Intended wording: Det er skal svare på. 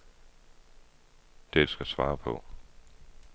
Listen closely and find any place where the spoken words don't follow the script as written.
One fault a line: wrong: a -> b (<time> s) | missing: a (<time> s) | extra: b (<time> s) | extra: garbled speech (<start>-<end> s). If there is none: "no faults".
no faults